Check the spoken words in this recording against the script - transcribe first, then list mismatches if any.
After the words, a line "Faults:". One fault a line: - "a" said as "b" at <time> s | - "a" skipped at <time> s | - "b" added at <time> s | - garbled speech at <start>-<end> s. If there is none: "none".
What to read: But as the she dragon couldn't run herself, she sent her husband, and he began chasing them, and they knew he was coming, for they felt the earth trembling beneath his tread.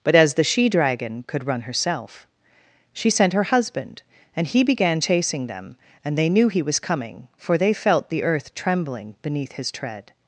But as the she dragon could run herself, she sent her husband, and he began chasing them, and they knew he was coming, for they felt the earth trembling beneath his tread.
Faults:
- "couldn't" said as "could" at 1.3 s